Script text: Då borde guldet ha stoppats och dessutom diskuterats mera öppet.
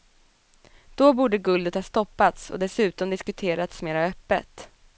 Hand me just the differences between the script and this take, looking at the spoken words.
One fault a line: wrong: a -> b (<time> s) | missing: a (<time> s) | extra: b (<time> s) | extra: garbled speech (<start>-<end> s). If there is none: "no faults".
no faults